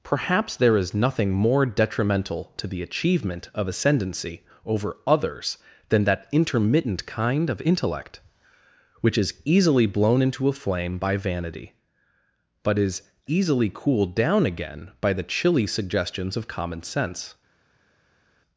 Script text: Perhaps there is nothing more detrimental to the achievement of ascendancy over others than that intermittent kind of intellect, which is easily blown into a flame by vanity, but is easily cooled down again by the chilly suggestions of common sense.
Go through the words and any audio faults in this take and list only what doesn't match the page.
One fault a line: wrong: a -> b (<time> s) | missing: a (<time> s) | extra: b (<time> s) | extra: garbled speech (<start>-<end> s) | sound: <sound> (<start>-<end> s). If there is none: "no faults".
no faults